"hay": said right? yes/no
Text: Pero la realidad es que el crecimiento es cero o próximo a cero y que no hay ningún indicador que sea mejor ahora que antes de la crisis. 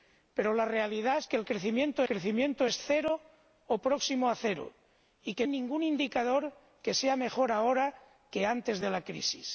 no